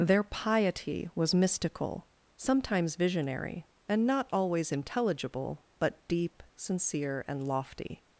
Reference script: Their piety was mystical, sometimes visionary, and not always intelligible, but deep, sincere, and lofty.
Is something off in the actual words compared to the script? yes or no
no